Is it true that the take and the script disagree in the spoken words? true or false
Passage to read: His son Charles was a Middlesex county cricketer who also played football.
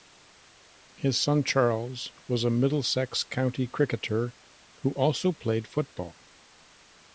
false